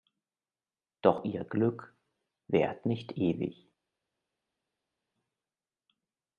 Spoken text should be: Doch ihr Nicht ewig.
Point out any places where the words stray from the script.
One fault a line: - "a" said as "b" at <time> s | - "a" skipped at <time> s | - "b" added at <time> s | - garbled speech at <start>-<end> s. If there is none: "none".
- "Glück währt" added at 1.4 s